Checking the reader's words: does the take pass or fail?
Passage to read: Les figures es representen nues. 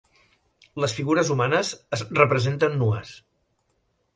fail